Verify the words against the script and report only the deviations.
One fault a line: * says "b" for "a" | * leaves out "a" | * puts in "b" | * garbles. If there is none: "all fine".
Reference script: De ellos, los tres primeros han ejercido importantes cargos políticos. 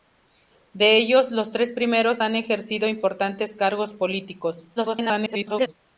* garbles